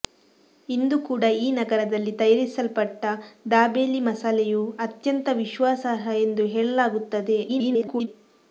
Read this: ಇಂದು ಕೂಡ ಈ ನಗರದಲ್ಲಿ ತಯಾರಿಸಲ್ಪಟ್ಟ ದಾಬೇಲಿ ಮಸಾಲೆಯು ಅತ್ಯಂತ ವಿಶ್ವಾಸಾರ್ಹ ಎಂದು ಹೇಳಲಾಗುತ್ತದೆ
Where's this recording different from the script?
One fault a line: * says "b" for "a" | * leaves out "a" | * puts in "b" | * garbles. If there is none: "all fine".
* garbles